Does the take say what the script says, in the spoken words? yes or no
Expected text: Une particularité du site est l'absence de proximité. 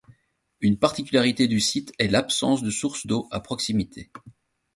no